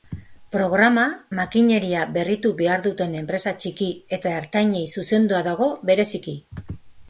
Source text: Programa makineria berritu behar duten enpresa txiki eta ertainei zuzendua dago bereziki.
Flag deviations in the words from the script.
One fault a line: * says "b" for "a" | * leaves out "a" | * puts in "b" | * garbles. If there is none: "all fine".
all fine